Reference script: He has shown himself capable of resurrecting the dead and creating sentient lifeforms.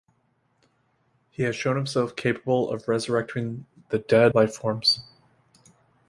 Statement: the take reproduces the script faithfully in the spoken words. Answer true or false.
false